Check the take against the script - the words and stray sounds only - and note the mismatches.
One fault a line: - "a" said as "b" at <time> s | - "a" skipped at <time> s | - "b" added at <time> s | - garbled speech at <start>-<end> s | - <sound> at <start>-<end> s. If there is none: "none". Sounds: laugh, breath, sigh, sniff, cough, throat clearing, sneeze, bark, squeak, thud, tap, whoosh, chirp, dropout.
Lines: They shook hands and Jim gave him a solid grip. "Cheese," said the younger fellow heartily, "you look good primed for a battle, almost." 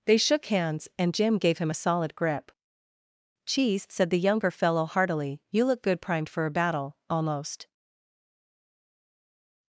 none